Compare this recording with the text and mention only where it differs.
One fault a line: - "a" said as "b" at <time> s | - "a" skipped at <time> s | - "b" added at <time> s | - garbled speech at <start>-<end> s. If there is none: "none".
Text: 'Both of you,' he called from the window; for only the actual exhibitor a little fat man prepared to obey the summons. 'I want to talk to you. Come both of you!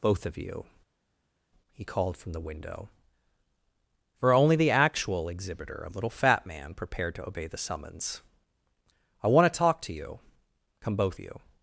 - "of" skipped at 11.2 s